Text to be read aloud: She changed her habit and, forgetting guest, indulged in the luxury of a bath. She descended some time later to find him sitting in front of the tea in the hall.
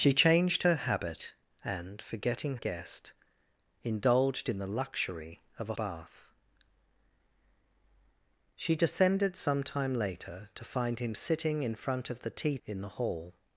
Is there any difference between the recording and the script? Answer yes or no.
no